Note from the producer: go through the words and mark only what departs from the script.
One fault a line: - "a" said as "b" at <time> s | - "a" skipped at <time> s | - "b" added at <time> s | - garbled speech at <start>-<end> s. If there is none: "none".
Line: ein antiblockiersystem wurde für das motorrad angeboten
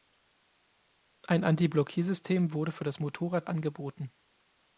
none